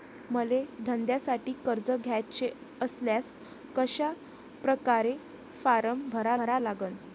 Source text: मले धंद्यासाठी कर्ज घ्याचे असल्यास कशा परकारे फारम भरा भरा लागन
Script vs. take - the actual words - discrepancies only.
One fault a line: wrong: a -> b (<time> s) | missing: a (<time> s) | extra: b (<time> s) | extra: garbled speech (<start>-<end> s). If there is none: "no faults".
no faults